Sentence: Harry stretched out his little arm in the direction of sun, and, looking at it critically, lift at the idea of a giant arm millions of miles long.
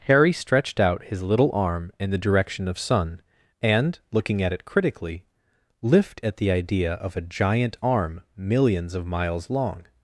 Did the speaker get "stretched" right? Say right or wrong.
right